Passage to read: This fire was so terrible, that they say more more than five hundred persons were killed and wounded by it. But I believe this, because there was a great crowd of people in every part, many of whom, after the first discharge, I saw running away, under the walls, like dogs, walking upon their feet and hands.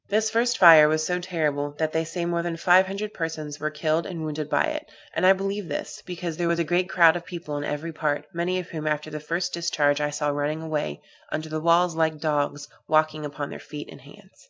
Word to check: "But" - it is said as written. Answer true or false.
false